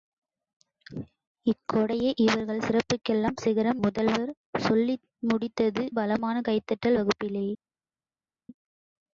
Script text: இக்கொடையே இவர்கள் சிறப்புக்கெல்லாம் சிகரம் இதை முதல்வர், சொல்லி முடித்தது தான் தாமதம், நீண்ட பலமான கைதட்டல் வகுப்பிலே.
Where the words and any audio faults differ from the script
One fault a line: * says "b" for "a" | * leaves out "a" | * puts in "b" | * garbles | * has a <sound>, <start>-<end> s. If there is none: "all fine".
* leaves out "இதை"
* leaves out "தான் தாமதம் நீண்ட"